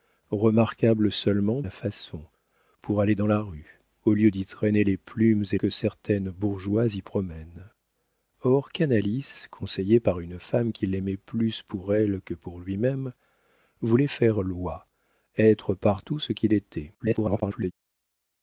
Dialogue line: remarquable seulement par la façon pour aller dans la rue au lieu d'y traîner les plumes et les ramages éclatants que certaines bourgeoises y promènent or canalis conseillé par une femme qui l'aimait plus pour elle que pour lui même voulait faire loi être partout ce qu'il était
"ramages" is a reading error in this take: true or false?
true